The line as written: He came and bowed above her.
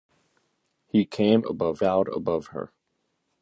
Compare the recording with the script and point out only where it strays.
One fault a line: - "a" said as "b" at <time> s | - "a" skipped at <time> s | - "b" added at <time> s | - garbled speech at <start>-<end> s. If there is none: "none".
- "and" said as "above" at 1.5 s